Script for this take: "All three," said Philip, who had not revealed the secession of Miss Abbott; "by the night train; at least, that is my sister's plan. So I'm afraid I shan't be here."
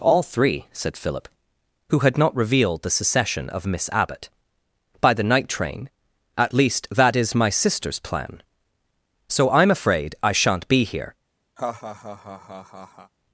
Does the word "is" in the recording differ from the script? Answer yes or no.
no